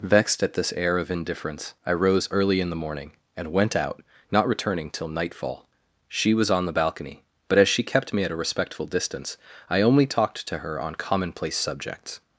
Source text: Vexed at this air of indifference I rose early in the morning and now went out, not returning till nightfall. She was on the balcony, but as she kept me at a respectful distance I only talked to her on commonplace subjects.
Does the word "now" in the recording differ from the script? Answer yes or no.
yes